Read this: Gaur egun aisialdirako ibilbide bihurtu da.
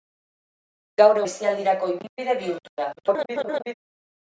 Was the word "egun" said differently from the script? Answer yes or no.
yes